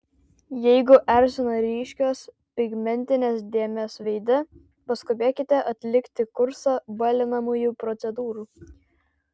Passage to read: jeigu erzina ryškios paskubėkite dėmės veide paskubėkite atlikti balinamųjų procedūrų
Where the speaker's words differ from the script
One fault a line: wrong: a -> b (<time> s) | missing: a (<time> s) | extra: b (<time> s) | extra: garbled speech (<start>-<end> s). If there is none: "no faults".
wrong: paskubėkite -> pigmentinės (2.6 s)
extra: kursą (6.4 s)